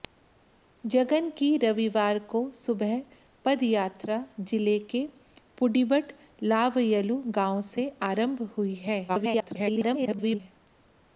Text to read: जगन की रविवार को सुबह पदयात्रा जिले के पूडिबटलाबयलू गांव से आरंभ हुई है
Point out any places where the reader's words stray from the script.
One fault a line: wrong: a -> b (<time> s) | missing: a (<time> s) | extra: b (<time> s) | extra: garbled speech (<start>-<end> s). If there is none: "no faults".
extra: garbled speech (9.1-10.4 s)